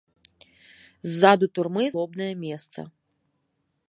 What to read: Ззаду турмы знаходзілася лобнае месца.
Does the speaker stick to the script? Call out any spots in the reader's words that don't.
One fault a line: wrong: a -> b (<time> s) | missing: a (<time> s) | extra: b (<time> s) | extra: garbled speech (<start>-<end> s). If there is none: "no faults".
missing: знаходзілася (1.9 s)